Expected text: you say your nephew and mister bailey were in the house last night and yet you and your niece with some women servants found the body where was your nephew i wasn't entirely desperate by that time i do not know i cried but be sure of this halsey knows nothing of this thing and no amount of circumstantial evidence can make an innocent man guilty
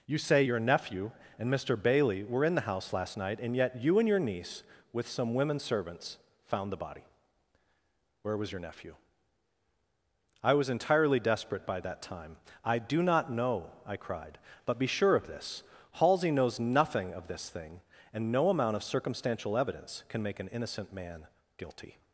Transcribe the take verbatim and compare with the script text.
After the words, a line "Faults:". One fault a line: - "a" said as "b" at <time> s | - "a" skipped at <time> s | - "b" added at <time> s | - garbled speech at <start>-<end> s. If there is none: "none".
you say your nephew and mister bailey were in the house last night and yet you and your niece with some women servants found the body where was your nephew i was entirely desperate by that time i do not know i cried but be sure of this halsey knows nothing of this thing and no amount of circumstantial evidence can make an innocent man guilty
Faults:
- "wasn't" said as "was" at 10.5 s